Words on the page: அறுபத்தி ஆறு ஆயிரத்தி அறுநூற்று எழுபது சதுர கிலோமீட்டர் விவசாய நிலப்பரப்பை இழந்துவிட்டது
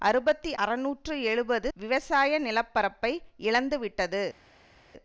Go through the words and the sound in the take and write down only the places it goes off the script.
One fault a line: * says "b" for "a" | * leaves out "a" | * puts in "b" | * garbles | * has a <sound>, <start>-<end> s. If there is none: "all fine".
* leaves out "ஆறு ஆயிரத்தி"
* leaves out "சதுர கிலோமீட்டர்"